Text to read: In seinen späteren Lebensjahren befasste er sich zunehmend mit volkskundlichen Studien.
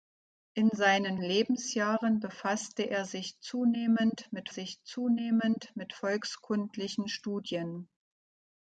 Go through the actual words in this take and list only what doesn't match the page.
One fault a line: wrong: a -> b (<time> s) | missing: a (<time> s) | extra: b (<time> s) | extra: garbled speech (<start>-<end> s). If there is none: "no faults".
missing: späteren (1.2 s)
extra: sich zunehmend mit (4.5 s)